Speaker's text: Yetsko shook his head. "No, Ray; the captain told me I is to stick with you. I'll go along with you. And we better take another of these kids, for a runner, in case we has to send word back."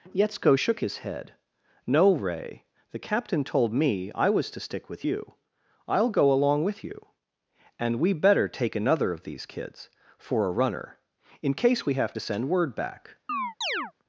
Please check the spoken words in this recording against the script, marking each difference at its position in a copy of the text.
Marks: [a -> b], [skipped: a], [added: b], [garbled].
Yetsko shook his head. "No, Ray; the captain told me I [is -> was] to stick with you. I'll go along with you. And we better take another of these kids, for a runner, in case we [has -> have] to send word back."